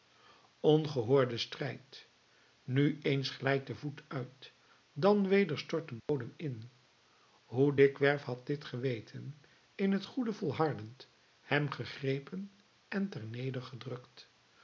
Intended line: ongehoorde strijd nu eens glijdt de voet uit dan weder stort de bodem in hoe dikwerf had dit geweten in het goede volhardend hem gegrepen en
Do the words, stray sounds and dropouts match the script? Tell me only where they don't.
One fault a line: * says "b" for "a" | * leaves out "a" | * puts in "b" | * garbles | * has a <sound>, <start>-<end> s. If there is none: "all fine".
* has a dropout, 6.0-6.1 s